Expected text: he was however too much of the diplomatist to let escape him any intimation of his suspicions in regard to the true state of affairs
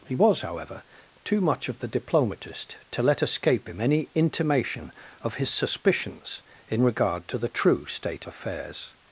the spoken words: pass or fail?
fail